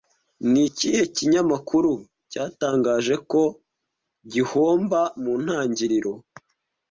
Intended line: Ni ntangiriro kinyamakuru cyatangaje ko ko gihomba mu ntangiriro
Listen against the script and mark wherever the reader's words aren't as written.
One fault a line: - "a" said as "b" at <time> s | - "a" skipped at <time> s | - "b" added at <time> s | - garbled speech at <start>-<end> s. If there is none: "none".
- "ntangiriro" said as "ikihe" at 0.7 s
- "ko" skipped at 3.4 s